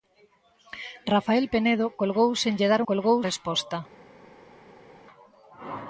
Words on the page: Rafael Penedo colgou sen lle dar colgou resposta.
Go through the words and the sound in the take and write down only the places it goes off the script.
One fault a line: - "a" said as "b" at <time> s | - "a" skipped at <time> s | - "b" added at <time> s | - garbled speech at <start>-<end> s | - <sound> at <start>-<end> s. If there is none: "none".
none